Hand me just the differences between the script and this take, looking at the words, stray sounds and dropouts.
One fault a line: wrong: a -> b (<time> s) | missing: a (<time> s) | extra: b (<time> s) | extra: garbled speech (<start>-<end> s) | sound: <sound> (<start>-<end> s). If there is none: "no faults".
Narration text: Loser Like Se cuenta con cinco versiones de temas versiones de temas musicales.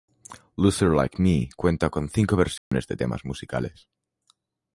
wrong: Se -> Me (1.2 s)
sound: dropout (2.6-2.7 s)
missing: versiones de temas (3.3 s)